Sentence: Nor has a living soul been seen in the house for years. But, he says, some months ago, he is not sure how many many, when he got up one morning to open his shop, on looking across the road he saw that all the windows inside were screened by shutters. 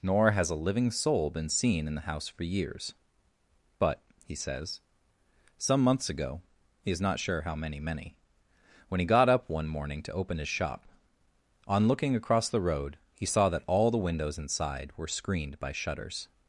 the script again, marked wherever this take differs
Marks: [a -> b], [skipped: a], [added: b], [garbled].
Nor has a living soul been seen in the house for years. But, he says, some months ago, he is not sure how many many, when he got up one morning to open his shop, on looking across the road he saw that all the windows inside were screened by shutters.